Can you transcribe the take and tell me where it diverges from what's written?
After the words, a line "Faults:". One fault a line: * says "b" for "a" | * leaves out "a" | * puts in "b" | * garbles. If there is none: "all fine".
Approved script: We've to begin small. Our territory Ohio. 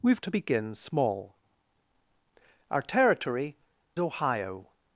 We've to begin small. Our territory Ohio.
Faults:
all fine